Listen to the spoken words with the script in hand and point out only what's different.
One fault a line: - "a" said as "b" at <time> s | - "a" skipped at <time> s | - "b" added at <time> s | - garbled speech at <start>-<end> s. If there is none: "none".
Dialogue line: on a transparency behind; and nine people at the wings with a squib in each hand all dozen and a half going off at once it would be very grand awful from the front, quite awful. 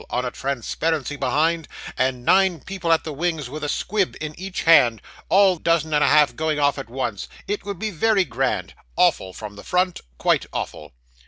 none